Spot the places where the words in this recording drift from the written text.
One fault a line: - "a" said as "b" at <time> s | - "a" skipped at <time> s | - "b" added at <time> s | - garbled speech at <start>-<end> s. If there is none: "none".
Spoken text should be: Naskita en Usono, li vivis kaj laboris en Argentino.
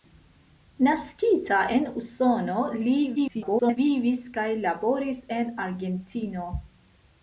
- garbled speech at 3.2-3.8 s